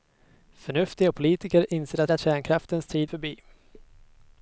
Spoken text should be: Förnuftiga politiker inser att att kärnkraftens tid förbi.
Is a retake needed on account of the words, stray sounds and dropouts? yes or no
no